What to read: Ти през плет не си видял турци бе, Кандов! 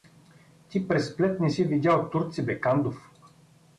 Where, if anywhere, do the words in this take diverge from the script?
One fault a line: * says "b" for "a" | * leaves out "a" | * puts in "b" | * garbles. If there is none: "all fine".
all fine